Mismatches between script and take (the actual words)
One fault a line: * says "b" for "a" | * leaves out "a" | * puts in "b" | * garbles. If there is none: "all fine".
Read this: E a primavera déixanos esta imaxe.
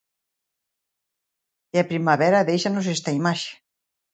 all fine